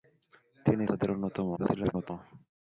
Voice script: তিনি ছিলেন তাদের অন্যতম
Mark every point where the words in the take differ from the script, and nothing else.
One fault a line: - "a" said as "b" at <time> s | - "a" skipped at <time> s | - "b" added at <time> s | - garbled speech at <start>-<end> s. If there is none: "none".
- "ছিলেন" skipped at 0.8 s
- garbled speech at 1.6-2.1 s